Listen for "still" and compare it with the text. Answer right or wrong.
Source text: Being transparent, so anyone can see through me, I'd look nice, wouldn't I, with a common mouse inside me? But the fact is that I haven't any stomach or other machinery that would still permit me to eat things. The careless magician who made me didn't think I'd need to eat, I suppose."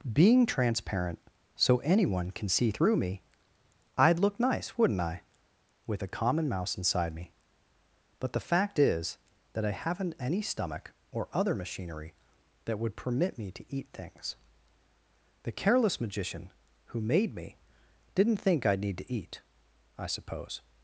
wrong